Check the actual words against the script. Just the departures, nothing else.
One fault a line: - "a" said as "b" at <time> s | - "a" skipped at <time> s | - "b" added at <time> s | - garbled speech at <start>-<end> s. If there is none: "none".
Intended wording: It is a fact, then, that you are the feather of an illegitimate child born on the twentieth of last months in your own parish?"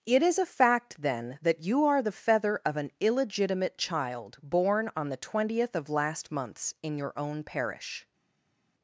none